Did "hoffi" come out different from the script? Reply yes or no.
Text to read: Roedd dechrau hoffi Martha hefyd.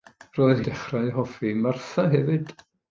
no